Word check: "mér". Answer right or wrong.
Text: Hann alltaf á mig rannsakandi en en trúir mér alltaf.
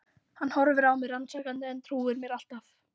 right